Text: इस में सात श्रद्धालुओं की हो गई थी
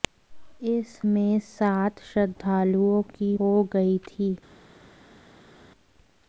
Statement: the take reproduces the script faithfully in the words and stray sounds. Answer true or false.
true